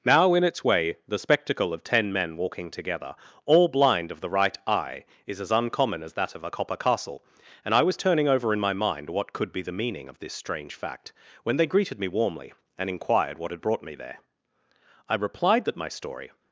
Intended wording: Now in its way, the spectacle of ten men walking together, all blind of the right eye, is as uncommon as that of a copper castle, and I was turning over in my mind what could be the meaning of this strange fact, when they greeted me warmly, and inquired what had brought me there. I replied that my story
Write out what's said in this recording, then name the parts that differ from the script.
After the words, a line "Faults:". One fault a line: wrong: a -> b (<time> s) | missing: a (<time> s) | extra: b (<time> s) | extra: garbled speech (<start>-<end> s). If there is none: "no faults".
Now in its way, the spectacle of ten men walking together, all blind of the right eye, is as uncommon as that of a copper castle, and I was turning over in my mind what could be the meaning of this strange fact, when they greeted me warmly, and inquired what had brought me there. I replied that my story
Faults:
no faults